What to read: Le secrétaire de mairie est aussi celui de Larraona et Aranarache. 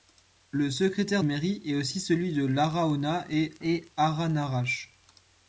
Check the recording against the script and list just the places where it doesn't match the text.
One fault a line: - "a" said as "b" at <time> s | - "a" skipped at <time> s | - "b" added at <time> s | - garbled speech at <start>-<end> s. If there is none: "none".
- "de" skipped at 1.2 s
- "et" added at 3.6 s